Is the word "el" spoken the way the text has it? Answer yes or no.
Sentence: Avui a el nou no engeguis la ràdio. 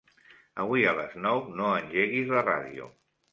no